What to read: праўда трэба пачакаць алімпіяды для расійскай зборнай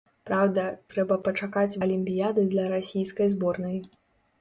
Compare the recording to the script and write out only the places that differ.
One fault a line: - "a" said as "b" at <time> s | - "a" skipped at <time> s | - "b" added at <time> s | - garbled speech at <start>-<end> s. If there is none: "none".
none